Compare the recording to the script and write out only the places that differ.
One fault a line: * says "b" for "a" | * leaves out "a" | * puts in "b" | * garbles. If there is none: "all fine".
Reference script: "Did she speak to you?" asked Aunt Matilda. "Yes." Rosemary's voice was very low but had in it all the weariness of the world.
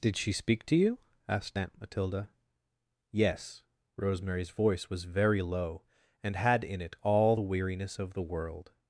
* says "and" for "but"